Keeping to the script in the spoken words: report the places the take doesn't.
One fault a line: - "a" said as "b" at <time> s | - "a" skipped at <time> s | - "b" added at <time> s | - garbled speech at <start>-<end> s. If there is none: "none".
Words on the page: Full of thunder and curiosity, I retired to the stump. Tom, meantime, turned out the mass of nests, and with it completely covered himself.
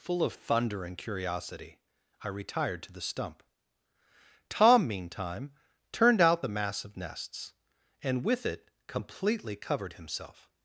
none